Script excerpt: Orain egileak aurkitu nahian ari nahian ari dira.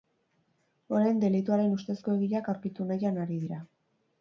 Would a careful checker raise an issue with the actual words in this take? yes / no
yes